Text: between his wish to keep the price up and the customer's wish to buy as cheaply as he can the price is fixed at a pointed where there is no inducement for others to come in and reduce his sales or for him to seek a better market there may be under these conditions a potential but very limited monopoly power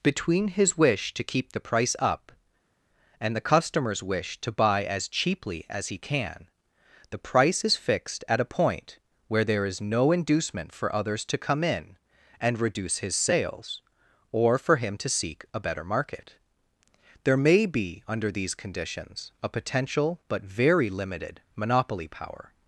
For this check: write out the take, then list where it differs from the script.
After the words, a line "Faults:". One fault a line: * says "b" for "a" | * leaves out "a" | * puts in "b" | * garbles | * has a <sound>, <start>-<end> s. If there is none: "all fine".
between his wish to keep the price up and the customer's wish to buy as cheaply as he can the price is fixed at a point where there is no inducement for others to come in and reduce his sales or for him to seek a better market there may be under these conditions a potential but very limited monopoly power
Faults:
* says "point" for "pointed"